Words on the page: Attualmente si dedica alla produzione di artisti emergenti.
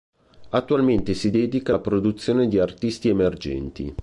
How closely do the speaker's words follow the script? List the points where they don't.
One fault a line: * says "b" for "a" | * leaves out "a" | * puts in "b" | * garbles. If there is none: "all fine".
all fine